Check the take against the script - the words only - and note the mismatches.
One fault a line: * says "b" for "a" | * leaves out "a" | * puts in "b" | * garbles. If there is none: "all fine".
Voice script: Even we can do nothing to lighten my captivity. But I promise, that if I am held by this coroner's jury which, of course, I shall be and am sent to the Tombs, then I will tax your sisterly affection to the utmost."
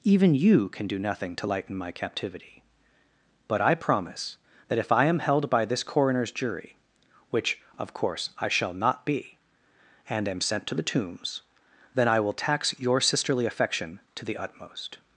* says "you" for "we"
* puts in "not"